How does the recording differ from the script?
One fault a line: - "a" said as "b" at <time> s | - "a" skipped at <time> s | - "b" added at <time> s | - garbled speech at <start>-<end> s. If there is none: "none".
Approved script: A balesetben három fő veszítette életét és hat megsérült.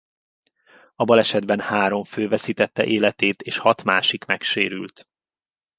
- "másik" added at 3.8 s